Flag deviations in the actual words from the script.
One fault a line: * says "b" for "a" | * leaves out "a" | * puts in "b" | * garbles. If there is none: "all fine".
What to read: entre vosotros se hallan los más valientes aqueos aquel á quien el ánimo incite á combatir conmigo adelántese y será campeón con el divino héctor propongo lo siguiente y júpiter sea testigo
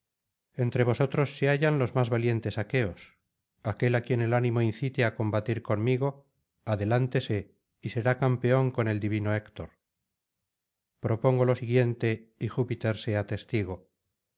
all fine